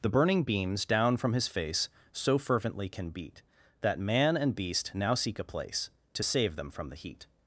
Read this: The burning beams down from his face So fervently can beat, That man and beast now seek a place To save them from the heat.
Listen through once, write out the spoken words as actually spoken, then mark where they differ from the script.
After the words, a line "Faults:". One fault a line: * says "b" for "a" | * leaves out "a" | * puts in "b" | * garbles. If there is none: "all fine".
The burning beams down from his face So fervently can beat, That man and beast now seek a place To save them from the heat.
Faults:
all fine